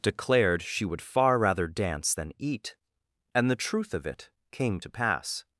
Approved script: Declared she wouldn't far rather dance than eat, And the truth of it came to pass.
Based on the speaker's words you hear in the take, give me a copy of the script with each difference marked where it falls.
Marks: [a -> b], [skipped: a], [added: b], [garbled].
Declared she [wouldn't -> would] far rather dance than eat, And the truth of it came to pass.